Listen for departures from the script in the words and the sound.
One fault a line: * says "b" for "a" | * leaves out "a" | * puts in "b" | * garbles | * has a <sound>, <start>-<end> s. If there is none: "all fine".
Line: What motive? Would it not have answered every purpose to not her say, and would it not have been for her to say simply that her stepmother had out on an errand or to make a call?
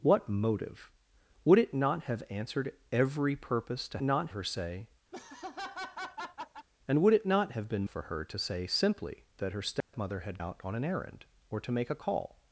* has a laugh, 5.1-6.7 s
* has a dropout, 9.8-9.9 s